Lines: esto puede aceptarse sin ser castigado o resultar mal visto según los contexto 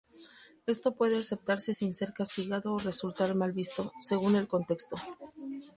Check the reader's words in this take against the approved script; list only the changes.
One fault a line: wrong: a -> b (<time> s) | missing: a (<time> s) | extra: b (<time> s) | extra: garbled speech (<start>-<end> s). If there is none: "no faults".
wrong: los -> el (4.4 s)